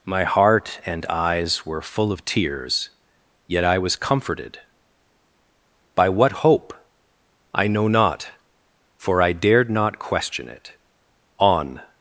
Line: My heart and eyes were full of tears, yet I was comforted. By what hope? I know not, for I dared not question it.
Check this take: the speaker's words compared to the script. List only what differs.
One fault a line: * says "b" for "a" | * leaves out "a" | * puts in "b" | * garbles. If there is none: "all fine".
* puts in "On"